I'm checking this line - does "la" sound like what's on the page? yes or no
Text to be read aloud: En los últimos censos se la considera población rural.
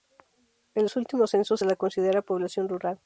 yes